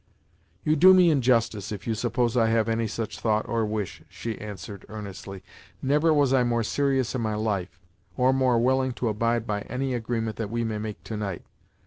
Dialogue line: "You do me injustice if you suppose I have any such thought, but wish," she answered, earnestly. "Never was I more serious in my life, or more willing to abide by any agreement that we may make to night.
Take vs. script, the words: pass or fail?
fail